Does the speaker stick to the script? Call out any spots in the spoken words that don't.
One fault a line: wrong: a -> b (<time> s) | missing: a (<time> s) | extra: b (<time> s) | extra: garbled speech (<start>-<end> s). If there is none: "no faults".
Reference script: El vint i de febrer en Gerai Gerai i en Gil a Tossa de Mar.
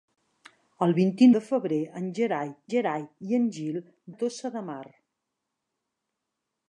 no faults